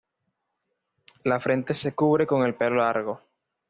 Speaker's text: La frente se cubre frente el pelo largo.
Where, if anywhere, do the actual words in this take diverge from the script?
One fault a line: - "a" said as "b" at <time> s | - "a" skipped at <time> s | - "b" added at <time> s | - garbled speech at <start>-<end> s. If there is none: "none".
- "frente" said as "con" at 2.2 s